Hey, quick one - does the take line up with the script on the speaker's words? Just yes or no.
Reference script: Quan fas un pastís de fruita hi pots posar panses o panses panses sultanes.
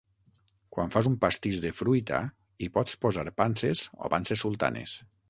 no